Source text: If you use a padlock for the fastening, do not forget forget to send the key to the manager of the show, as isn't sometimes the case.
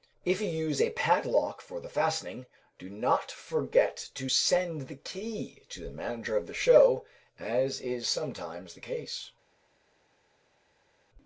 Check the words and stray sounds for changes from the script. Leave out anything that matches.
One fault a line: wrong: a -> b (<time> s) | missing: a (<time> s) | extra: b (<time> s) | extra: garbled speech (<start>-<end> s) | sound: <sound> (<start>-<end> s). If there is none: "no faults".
missing: forget (4.1 s)
wrong: isn't -> is (7.8 s)